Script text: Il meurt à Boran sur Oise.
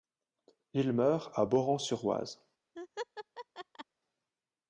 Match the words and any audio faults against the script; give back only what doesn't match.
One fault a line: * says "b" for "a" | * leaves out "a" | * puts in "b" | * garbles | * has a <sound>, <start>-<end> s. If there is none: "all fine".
* has a laugh, 2.8-3.9 s